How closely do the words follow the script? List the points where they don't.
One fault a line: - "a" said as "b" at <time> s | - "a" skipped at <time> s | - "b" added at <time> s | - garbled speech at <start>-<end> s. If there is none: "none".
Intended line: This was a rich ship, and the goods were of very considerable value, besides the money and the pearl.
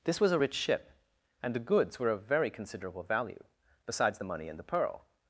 none